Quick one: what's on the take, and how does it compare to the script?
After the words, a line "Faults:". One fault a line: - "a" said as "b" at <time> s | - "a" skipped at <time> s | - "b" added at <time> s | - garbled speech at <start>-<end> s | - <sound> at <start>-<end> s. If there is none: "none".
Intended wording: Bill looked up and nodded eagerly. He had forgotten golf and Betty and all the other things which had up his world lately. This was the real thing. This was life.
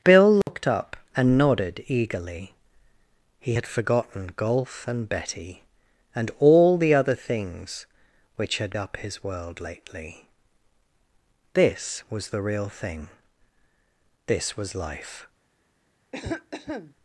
Bill looked up and nodded eagerly. He had forgotten golf and Betty and all the other things which had up his world lately. This was the real thing. This was life.
Faults:
- dropout at 0.4-0.5 s
- cough at 16.1-16.9 s